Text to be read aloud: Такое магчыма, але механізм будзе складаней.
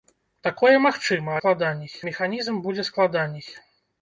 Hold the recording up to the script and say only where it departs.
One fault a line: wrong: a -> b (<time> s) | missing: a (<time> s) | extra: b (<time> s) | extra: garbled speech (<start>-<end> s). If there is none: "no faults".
wrong: але -> складаней (1.4 s)